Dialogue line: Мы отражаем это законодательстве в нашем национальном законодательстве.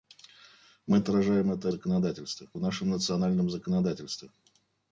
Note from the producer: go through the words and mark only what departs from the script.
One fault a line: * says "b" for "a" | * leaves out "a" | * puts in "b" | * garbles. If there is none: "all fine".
all fine